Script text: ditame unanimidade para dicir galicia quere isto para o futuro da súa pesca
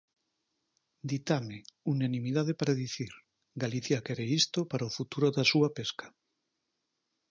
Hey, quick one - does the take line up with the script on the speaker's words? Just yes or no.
yes